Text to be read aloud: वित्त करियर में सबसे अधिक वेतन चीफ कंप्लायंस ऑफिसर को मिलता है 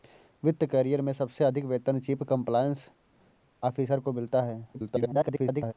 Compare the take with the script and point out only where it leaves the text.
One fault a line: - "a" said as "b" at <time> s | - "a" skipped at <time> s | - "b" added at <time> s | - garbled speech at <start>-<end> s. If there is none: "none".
- garbled speech at 4.7-5.7 s